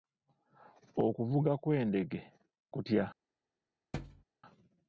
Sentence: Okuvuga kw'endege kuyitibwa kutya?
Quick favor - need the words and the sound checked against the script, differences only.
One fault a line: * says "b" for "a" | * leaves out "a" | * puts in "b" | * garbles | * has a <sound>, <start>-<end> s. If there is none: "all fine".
* leaves out "kuyitibwa"
* has a thud, 3.9-4.2 s